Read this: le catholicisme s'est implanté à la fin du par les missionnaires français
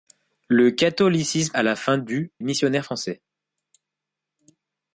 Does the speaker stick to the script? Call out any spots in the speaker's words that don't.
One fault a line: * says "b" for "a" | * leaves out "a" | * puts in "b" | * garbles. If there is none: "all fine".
* leaves out "s'est implanté"
* leaves out "par les"